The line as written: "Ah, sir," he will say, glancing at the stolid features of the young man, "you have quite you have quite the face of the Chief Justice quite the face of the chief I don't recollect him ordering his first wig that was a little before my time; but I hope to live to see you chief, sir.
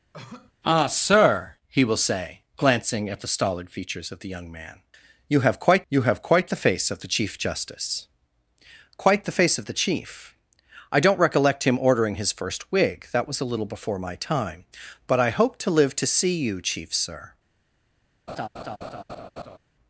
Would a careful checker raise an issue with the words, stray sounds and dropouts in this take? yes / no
yes